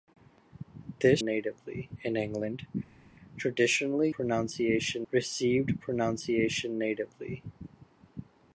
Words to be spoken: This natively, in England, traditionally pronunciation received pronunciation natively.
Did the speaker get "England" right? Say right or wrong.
right